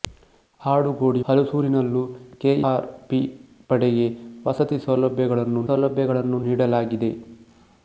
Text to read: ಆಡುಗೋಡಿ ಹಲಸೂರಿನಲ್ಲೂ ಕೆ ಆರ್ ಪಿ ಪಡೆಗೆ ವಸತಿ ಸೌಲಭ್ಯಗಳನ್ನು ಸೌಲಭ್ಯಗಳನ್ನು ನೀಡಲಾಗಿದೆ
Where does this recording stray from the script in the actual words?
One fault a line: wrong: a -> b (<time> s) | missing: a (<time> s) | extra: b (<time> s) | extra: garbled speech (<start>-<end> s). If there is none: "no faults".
no faults